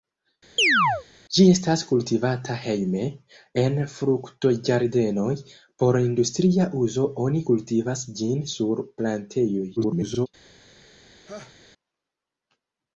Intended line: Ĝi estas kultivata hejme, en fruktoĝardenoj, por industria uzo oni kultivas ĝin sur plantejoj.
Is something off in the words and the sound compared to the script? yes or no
yes